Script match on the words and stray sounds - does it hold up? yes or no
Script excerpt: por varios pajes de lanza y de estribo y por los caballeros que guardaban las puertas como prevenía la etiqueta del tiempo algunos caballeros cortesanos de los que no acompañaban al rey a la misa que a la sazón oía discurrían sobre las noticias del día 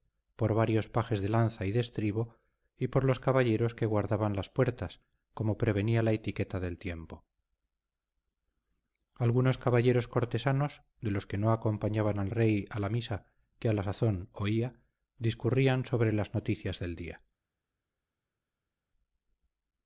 yes